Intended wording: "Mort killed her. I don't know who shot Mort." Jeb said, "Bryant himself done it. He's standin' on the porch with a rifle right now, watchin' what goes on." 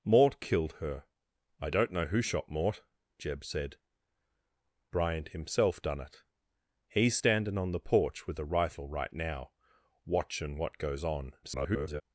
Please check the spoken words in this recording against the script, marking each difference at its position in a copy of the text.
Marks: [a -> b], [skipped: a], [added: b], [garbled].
"Mort killed her. I don't know who shot Mort." Jeb said, "Bryant himself done it. He's standin' on the porch with a rifle right now, watchin' what goes on." [garbled]